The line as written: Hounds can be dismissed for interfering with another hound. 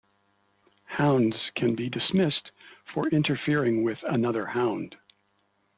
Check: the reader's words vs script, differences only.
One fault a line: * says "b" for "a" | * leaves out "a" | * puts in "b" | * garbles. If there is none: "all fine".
all fine